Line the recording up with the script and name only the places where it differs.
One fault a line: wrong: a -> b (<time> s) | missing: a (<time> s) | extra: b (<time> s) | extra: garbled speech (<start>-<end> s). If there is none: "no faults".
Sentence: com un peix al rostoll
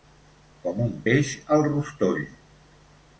no faults